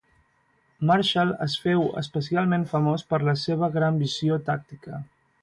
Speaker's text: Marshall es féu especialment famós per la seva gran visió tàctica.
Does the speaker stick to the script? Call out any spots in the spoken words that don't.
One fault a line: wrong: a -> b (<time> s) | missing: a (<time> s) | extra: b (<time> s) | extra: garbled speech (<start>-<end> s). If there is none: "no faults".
no faults